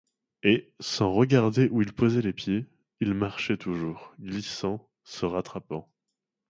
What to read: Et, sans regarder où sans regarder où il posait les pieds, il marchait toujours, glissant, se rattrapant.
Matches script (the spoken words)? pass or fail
fail